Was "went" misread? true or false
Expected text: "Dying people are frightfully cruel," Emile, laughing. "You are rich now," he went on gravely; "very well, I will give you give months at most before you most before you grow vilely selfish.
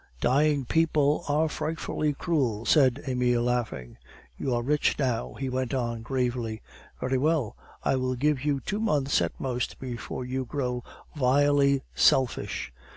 false